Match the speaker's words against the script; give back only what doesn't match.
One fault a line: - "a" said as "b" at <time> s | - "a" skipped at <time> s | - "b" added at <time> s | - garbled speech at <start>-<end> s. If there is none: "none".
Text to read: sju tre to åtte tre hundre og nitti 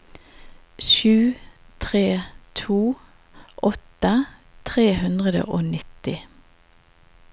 none